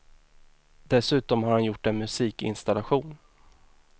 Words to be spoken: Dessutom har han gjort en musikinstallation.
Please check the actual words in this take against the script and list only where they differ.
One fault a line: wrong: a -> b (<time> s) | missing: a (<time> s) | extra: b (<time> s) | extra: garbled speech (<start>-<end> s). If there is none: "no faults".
no faults